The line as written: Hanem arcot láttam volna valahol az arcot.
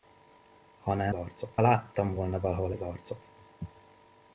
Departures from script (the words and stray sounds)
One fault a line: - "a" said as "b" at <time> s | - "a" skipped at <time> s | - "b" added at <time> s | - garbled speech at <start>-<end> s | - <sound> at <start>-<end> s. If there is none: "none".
none